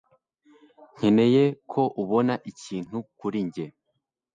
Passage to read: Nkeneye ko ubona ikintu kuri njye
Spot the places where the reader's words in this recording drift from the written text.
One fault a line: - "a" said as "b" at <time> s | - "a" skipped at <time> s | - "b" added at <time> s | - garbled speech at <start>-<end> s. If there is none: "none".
none